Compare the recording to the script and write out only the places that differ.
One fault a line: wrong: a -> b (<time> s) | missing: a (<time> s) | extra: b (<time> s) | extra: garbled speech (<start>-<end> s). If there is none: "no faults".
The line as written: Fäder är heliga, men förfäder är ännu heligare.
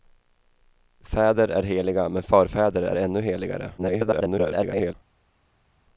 extra: garbled speech (3.8-4.9 s)